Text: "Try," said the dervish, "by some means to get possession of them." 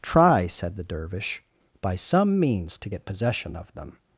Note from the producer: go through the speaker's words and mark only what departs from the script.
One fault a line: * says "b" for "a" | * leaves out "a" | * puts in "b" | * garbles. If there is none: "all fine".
all fine